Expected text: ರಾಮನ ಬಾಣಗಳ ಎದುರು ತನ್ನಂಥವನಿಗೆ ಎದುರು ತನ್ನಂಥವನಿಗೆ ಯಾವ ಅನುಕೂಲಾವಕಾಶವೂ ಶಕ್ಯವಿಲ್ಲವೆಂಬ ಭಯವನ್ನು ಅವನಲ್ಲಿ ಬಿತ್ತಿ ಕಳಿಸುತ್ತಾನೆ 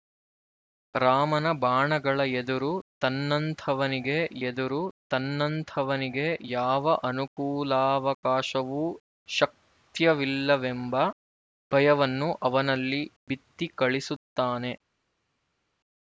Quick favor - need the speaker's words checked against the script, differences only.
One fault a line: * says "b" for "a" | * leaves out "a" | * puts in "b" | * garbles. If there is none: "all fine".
all fine